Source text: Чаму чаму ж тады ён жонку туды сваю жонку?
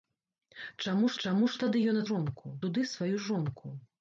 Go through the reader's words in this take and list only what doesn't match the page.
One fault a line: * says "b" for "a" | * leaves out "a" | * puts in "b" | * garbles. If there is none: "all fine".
all fine